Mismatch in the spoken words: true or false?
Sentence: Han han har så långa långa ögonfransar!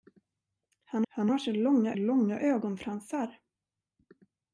false